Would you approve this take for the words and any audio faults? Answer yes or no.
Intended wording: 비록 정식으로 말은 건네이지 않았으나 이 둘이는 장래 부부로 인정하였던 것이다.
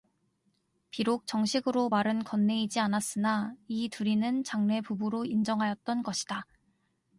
yes